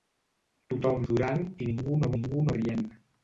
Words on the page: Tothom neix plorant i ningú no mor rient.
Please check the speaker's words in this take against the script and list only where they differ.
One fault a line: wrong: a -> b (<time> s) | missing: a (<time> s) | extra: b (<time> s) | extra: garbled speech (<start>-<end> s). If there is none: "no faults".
missing: neix (1.1 s)
wrong: mor -> ningú (2.2 s)